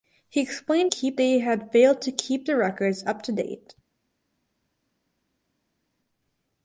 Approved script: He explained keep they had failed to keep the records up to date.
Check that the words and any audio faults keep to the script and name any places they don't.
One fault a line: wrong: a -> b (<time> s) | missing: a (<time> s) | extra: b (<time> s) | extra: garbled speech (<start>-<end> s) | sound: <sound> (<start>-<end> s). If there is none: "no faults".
no faults